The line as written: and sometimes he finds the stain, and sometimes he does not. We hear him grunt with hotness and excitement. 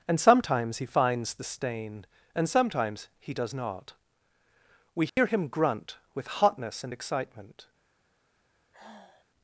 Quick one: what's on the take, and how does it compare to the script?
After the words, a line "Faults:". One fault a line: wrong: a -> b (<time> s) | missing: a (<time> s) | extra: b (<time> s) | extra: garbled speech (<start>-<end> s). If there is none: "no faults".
and sometimes he finds the stain, and sometimes he does not. We hear him grunt with hotness and excitement.
Faults:
no faults